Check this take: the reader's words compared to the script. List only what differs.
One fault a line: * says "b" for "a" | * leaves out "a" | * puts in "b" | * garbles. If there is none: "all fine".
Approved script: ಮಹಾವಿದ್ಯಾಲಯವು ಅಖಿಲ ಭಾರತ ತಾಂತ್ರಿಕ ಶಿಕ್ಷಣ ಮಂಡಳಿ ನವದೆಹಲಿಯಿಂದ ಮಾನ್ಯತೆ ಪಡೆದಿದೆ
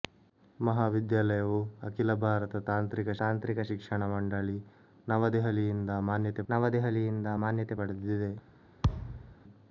* puts in "ತಾಂತ್ರಿಕ"
* puts in "ನವದೆಹಲಿಯಿಂದ ಮಾನ್ಯತೆ"